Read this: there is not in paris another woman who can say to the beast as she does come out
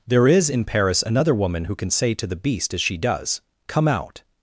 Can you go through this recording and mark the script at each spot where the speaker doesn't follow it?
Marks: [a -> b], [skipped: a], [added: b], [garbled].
there is [skipped: not] in paris another woman who can say to the beast as she does come out